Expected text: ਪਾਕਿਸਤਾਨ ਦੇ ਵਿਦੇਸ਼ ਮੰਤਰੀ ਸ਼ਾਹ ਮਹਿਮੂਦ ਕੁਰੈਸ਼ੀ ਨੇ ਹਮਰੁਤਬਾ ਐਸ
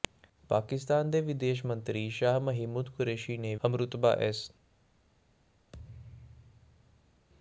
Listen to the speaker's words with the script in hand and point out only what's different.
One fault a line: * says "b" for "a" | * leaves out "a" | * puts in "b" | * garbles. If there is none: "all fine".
all fine